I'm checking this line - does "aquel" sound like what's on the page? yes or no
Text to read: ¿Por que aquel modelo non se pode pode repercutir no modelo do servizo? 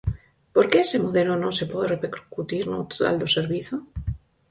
no